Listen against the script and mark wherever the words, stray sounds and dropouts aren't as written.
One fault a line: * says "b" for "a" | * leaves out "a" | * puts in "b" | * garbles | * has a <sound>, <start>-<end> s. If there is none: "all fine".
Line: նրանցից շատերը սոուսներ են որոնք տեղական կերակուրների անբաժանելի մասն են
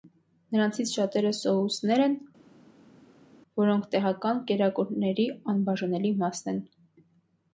all fine